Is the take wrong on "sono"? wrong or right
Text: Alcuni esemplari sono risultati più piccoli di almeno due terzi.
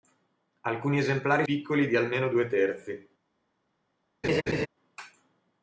wrong